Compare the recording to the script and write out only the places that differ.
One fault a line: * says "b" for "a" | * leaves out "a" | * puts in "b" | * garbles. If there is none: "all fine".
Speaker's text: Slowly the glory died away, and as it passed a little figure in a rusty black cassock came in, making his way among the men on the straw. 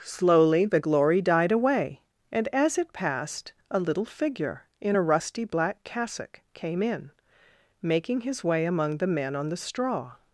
all fine